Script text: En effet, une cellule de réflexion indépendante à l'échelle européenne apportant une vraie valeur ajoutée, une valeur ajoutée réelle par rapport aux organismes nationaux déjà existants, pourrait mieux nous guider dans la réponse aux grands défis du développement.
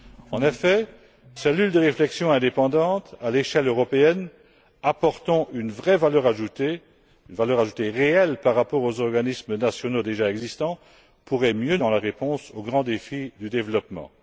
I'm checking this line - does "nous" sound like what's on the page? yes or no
no